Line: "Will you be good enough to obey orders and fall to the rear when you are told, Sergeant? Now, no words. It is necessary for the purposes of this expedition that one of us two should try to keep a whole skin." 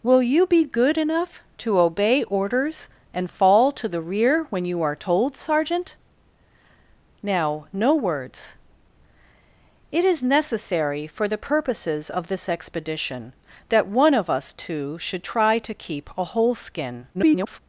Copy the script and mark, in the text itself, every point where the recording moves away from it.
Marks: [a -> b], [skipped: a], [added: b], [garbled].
"Will you be good enough to obey orders and fall to the rear when you are told, Sergeant? Now, no words. It is necessary for the purposes of this expedition that one of us two should try to keep a whole skin." [garbled]